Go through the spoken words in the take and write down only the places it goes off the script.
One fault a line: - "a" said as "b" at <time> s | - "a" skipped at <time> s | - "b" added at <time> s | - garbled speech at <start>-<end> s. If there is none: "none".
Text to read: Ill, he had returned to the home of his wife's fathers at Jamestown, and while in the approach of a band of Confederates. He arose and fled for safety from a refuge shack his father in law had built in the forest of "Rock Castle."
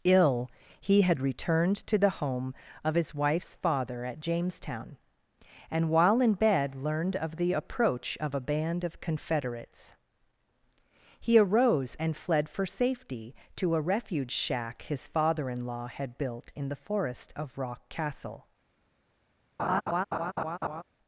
- "fathers" said as "father" at 3.6 s
- "bed learned of" added at 6.3 s
- "from" said as "to" at 13.6 s